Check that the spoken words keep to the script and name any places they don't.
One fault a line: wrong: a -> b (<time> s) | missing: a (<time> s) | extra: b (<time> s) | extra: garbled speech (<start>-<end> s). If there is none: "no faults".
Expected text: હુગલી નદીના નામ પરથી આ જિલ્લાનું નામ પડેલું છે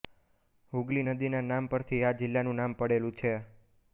no faults